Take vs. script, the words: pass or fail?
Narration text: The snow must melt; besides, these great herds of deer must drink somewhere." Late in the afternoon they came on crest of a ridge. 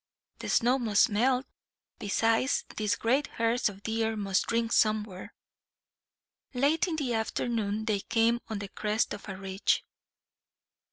fail